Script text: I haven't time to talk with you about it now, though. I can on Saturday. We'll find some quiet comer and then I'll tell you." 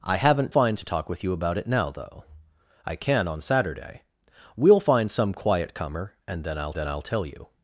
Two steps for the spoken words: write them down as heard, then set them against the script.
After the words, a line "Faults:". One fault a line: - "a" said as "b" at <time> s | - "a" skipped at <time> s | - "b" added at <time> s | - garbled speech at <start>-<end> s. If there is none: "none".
I haven't find to talk with you about it now, though. I can on Saturday. We'll find some quiet comer and then I'll then I'll tell you."
Faults:
- "time" said as "find" at 0.5 s
- "then I'll" added at 6.7 s